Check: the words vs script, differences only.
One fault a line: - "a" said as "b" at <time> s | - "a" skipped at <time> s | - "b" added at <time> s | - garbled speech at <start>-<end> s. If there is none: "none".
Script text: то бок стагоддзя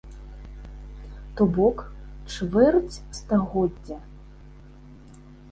- "чвэрць" added at 2.3 s